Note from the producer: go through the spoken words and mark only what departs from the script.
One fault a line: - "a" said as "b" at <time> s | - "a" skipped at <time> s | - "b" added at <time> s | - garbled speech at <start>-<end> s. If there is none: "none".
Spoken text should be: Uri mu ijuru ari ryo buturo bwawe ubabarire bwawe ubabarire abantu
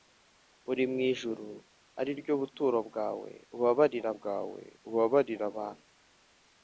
none